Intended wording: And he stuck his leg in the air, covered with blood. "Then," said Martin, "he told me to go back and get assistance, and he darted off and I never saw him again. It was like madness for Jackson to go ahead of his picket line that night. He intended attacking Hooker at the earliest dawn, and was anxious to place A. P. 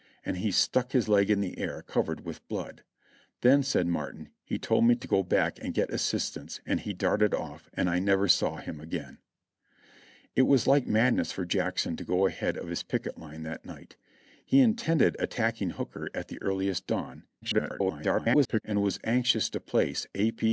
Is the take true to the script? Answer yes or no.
no